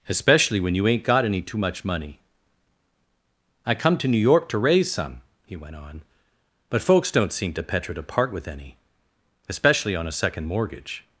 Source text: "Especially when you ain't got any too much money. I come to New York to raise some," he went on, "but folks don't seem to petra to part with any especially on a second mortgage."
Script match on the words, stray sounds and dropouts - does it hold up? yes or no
yes